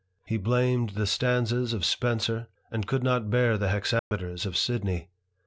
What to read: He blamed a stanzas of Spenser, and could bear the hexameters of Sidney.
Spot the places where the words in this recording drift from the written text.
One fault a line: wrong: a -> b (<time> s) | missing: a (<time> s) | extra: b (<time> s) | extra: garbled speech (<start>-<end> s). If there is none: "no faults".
wrong: a -> the (0.9 s)
extra: not (3.0 s)